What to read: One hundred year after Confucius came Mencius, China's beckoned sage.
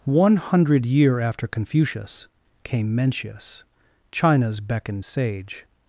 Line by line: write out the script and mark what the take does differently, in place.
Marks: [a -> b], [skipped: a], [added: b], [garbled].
One hundred year after Confucius came Mencius, China's beckoned sage.